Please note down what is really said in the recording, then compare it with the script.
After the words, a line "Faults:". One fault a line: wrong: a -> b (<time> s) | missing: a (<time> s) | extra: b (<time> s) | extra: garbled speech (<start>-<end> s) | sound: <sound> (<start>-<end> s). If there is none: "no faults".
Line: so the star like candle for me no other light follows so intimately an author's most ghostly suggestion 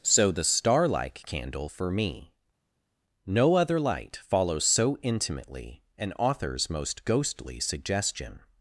so the star like candle for me no other light follows so intimately an author's most ghostly suggestion
Faults:
no faults